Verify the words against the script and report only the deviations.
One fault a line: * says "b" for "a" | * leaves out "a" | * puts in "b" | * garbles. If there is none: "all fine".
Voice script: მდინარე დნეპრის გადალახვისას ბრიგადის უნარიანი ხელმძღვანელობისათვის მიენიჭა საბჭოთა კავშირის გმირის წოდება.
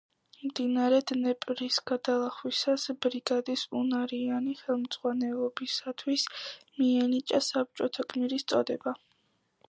* leaves out "კავშირის"